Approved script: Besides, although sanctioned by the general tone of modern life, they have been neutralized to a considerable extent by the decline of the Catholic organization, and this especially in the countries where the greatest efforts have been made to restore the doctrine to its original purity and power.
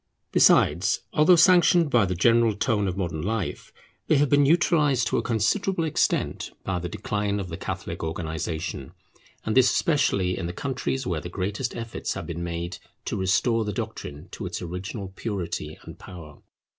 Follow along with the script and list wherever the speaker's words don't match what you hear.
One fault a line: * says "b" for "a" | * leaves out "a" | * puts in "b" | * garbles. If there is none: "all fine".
all fine